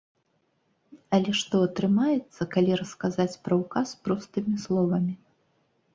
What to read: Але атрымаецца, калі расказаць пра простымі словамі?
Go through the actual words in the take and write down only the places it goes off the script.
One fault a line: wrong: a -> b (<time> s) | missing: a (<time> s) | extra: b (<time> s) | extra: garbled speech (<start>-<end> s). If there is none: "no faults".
extra: што (1.4 s)
extra: ўказ (3.6 s)